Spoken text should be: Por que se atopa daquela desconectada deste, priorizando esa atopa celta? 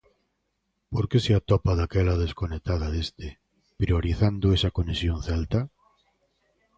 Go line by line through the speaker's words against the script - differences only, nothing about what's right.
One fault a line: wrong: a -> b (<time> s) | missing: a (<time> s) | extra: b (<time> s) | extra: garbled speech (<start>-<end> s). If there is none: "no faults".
wrong: atopa -> conexión (4.8 s)